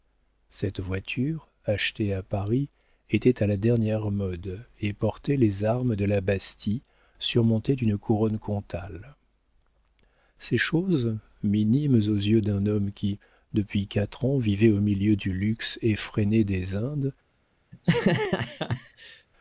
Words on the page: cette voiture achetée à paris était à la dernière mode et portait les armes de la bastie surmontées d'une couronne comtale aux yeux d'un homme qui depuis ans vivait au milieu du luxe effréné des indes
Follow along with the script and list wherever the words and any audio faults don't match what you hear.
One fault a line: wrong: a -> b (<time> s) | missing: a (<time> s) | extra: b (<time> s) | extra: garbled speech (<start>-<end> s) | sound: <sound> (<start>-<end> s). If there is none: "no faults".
extra: ces choses minimes (10.4 s)
extra: quatre (13.9 s)
sound: laugh (17.7-19.3 s)